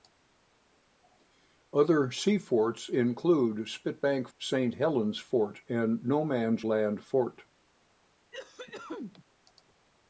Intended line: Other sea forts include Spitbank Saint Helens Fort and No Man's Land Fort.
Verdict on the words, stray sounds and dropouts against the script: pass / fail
fail